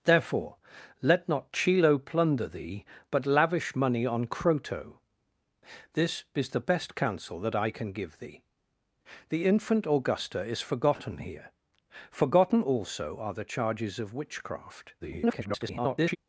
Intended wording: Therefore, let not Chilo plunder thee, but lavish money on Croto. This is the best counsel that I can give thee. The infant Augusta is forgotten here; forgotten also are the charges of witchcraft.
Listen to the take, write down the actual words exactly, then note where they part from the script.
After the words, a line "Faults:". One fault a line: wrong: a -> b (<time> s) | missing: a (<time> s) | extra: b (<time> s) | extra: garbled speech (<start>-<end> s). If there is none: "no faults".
Therefore, let not Chilo plunder thee, but lavish money on Croto. This is the best counsel that I can give thee. The infant Augusta is forgotten here; forgotten also are the charges of witchcraft. [garbled]
Faults:
extra: garbled speech (15.0-16.2 s)